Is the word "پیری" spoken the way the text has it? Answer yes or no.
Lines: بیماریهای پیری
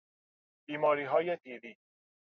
yes